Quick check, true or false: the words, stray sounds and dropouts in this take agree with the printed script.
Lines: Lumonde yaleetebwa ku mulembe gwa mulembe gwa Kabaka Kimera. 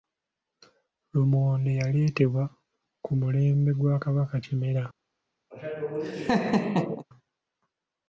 false